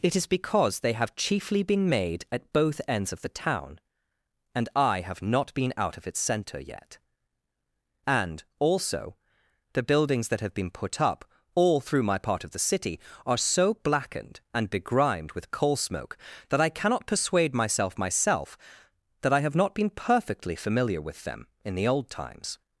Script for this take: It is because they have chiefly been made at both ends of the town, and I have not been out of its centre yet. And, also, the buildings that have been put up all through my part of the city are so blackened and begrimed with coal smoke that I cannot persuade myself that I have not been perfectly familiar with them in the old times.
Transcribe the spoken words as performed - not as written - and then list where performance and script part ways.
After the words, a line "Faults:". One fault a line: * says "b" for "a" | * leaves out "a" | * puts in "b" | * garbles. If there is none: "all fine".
It is because they have chiefly been made at both ends of the town, and I have not been out of its centre yet. And, also, the buildings that have been put up all through my part of the city are so blackened and begrimed with coal smoke that I cannot persuade myself myself that I have not been perfectly familiar with them in the old times.
Faults:
* puts in "myself"